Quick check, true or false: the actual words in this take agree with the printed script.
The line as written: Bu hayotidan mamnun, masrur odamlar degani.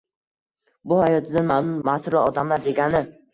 true